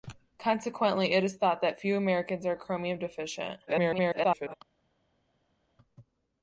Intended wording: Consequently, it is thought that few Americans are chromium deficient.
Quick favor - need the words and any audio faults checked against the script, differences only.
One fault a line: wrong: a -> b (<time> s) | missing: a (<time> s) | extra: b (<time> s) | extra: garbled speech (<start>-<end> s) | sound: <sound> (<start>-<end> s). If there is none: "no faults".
extra: garbled speech (3.7-4.5 s)